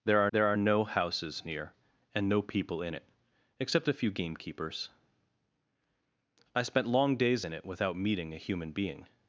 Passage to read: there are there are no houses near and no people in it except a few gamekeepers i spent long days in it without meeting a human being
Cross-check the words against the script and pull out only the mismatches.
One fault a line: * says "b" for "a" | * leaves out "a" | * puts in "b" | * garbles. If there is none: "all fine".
all fine